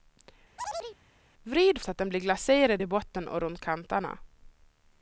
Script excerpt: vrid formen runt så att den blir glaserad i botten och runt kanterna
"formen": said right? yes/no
no